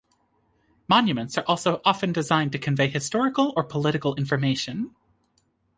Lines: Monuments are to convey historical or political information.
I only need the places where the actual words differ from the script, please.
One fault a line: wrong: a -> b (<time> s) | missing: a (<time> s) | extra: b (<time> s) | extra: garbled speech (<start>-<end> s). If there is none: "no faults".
extra: also often designed (1.4 s)